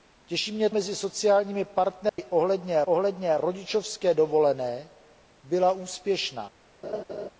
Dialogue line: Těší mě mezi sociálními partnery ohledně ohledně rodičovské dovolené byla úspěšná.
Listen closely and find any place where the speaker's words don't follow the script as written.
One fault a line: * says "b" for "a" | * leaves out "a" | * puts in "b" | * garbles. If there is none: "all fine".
all fine